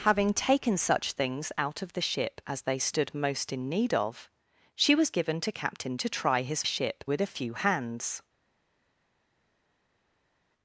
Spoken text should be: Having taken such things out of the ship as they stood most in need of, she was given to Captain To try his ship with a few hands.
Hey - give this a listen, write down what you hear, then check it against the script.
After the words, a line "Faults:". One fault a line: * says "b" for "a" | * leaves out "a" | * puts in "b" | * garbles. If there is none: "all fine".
Having taken such things out of the ship as they stood most in need of, she was given to Captain To try his ship with a few hands.
Faults:
all fine